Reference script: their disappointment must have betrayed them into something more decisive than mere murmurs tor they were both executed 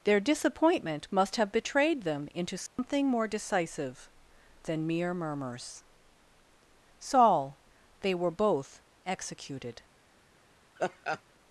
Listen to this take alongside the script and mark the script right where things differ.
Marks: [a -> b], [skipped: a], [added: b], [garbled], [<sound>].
their disappointment must have betrayed them into something [dropout] more decisive than mere murmurs [tor -> saul] they were both executed [laugh]